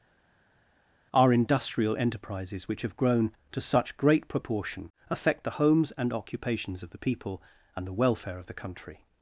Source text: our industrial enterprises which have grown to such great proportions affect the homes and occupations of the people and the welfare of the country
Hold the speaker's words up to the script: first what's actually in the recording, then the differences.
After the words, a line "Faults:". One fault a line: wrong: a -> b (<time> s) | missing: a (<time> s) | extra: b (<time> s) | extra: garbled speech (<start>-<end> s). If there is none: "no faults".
our industrial enterprises which have grown to such great proportion affect the homes and occupations of the people and the welfare of the country
Faults:
wrong: proportions -> proportion (4.3 s)